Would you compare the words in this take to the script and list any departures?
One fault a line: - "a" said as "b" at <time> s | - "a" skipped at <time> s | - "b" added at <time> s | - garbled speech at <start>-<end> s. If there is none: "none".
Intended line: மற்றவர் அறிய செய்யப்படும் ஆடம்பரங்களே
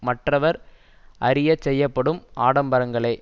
none